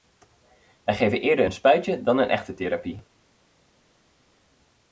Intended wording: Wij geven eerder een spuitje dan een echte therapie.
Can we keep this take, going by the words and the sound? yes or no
yes